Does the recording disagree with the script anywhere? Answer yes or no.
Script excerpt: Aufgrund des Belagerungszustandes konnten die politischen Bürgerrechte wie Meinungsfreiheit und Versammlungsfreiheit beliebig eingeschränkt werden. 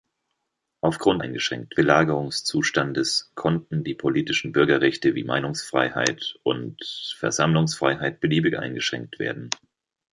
yes